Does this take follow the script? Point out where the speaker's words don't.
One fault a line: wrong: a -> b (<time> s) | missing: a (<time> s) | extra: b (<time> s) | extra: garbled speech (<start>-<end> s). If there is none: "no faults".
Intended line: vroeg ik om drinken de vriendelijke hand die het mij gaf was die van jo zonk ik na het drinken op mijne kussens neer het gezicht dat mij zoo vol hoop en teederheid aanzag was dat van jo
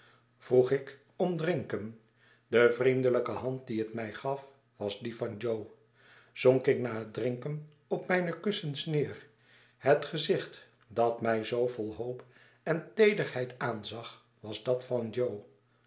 no faults